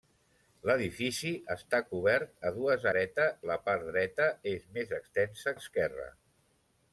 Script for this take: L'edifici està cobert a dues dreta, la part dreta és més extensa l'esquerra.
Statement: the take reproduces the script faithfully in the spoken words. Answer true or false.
true